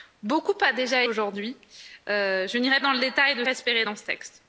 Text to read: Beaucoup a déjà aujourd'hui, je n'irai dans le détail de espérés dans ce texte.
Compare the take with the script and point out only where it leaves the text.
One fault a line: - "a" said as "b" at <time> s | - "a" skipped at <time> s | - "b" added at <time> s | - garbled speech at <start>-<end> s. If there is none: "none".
none